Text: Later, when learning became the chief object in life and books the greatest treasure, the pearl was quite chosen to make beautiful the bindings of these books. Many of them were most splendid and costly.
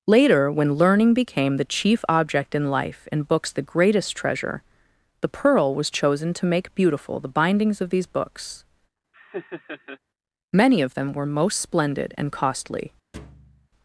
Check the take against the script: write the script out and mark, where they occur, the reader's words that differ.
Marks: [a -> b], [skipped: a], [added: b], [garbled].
Later, when learning became the chief object in life and books the greatest treasure, the pearl was [skipped: quite] chosen to make beautiful the bindings of these books. Many of them were most splendid and costly.